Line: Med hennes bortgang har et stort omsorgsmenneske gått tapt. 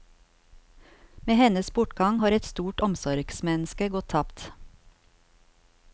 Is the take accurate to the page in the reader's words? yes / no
yes